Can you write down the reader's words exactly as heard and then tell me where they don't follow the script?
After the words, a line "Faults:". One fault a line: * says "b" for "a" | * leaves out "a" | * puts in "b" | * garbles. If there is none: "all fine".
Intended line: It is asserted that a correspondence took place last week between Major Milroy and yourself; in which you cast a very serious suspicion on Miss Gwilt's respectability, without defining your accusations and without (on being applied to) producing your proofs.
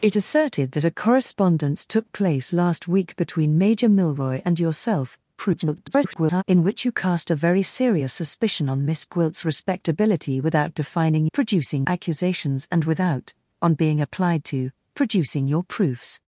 It asserted that a correspondence took place last week between Major Milroy and yourself; [garbled] in which you cast a very serious suspicion on Miss Gwilt's respectability, without defining producing accusations and without (on being applied to) producing your proofs.
Faults:
* leaves out "is"
* garbles
* says "producing" for "your"